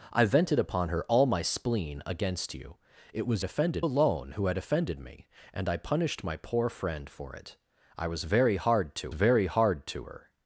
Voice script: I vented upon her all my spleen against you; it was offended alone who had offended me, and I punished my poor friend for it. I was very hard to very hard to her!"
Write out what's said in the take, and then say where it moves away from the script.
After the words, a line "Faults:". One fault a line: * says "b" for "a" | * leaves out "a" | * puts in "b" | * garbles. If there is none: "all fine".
I vented upon her all my spleen against you; it was offended alone who had offended me, and I punished my poor friend for it. I was very hard to very hard to her!"
Faults:
all fine